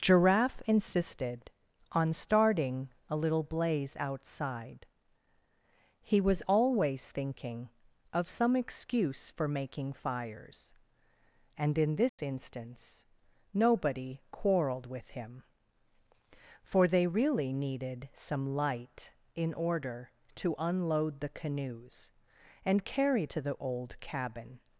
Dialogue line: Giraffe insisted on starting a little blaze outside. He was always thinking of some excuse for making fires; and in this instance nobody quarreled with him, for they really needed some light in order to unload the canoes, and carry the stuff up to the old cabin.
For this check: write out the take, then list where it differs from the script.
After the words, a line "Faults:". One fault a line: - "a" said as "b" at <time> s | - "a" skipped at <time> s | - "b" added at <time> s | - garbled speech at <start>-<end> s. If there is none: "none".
Giraffe insisted on starting a little blaze outside. He was always thinking of some excuse for making fires; and in this instance nobody quarreled with him, for they really needed some light in order to unload the canoes, and carry to the old cabin.
Faults:
- "the stuff up" skipped at 23.3 s